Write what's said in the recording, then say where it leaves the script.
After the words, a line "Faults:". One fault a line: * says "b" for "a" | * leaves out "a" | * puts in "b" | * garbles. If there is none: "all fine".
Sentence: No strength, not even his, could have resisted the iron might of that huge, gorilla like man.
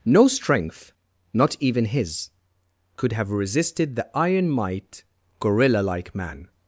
No strength, not even his, could have resisted the iron might gorilla like man.
Faults:
* leaves out "of that huge"